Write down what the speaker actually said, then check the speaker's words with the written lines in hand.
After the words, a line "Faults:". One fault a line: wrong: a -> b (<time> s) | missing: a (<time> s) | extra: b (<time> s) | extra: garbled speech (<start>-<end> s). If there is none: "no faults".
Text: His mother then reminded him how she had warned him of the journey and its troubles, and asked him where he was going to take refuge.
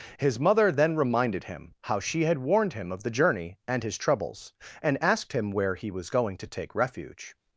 His mother then reminded him how she had warned him of the journey and his troubles, and asked him where he was going to take refuge.
Faults:
wrong: its -> his (3.8 s)